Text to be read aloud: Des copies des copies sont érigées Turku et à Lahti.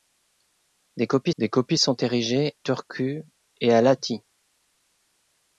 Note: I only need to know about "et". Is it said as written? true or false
true